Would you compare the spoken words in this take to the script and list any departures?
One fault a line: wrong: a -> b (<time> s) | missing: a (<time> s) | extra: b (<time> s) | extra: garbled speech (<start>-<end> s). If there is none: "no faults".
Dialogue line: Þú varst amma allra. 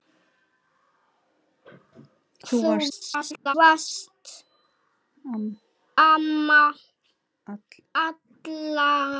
extra: garbled speech (2.9-3.5 s)